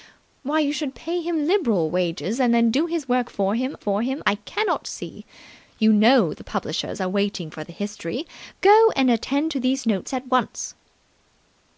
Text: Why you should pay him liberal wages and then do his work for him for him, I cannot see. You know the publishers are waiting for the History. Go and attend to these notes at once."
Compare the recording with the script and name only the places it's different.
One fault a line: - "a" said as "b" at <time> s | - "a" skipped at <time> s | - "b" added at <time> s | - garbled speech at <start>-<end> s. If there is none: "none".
none